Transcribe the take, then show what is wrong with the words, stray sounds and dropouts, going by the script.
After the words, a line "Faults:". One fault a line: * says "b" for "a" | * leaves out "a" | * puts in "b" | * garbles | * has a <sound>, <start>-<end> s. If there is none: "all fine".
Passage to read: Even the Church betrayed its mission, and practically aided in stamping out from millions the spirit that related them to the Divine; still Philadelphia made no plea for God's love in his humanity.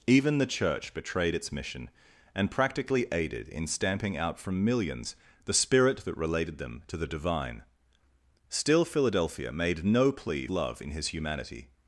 Even the Church betrayed its mission, and practically aided in stamping out from millions the spirit that related them to the Divine; still Philadelphia made no plea love in his humanity.
Faults:
* leaves out "for God's"